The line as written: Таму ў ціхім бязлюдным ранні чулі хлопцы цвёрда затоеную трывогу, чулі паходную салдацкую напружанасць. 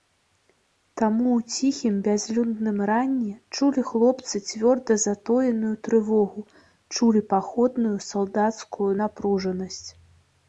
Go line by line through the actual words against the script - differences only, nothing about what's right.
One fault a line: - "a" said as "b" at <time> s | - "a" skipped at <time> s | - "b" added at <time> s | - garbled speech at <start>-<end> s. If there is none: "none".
none